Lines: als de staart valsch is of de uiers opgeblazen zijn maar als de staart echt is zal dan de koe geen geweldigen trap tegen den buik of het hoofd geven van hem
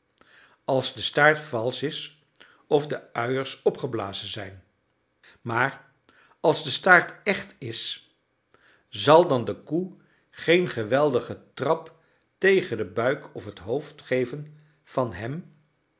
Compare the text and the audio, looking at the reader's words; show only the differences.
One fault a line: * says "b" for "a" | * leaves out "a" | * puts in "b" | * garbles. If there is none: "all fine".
all fine